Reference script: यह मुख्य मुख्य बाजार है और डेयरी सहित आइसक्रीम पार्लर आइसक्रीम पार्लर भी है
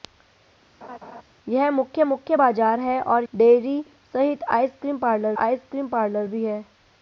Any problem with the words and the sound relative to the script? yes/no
yes